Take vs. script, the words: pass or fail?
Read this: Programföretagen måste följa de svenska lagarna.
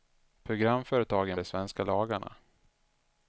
fail